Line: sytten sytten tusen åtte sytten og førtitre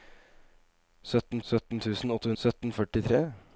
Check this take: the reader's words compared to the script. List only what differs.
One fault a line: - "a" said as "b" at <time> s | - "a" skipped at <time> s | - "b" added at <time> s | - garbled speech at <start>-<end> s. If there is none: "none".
none